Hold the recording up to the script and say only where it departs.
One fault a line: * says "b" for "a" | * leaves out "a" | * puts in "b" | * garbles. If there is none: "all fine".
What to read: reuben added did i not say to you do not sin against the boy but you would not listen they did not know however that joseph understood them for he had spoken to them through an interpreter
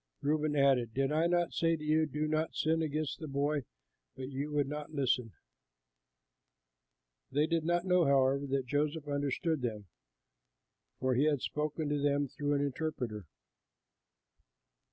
all fine